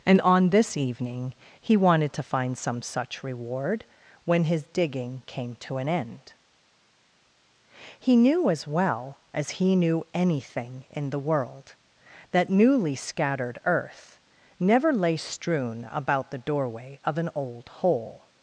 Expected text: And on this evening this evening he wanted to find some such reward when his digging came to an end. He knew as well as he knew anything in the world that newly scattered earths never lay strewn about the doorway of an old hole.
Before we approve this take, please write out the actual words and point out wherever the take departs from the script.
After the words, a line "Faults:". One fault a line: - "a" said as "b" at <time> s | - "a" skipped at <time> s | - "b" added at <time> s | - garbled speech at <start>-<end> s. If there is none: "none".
And on this evening he wanted to find some such reward when his digging came to an end. He knew as well as he knew anything in the world that newly scattered earth never lay strewn about the doorway of an old hole.
Faults:
- "this evening" skipped at 1.3 s
- "earths" said as "earth" at 13.6 s